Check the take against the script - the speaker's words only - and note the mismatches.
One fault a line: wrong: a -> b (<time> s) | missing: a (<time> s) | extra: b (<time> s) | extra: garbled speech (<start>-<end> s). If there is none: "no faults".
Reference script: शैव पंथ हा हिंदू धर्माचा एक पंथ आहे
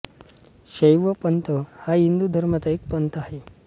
no faults